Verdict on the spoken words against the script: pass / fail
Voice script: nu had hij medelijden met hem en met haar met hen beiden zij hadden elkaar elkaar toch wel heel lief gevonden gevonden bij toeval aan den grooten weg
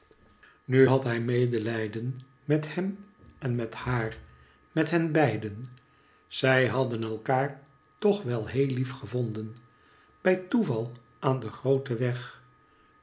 fail